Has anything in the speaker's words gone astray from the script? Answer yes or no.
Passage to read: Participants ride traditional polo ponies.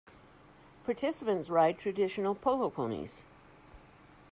no